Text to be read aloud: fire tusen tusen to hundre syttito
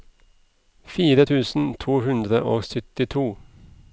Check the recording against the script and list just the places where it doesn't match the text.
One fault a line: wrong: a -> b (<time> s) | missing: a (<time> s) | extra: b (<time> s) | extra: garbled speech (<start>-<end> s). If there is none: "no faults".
missing: tusen (1.6 s)
extra: og (2.4 s)